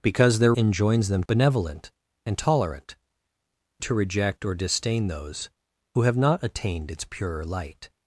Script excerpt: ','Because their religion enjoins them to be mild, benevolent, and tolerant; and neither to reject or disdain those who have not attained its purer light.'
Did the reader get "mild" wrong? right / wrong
wrong